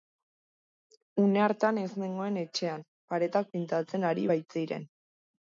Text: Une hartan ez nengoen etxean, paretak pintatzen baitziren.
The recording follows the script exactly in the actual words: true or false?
false